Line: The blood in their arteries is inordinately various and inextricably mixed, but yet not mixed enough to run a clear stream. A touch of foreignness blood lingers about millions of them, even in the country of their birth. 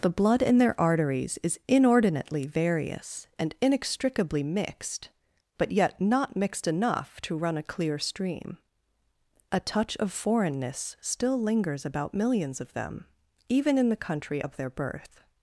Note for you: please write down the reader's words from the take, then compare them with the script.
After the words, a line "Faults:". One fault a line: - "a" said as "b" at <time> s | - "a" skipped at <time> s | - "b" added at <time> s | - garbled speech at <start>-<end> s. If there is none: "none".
The blood in their arteries is inordinately various and inextricably mixed, but yet not mixed enough to run a clear stream. A touch of foreignness still lingers about millions of them, even in the country of their birth.
Faults:
- "blood" said as "still" at 11.0 s